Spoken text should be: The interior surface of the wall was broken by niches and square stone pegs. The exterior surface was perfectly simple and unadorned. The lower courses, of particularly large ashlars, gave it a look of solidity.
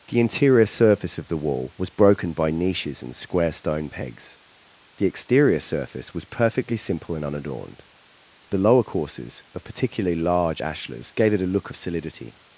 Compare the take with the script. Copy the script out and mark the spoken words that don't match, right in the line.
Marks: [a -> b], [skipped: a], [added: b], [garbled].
The interior surface of the wall was broken by niches and square stone pegs. The exterior surface was perfectly simple and unadorned. The lower courses, of particularly large ashlars, gave it a look of solidity.